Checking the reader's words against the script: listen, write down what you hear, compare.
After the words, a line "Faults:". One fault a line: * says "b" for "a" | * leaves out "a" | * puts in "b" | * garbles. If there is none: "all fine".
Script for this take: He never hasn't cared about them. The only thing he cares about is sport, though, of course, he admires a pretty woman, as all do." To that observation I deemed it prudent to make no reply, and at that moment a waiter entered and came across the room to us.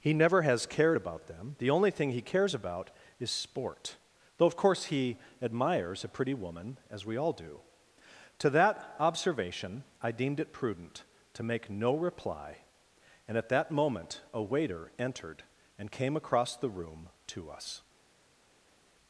He never has cared about them. The only thing he cares about is sport, though, of course, he admires a pretty woman, as we all do." To that observation I deemed it prudent to make no reply, and at that moment a waiter entered and came across the room to us.
Faults:
* says "has" for "hasn't"
* puts in "we"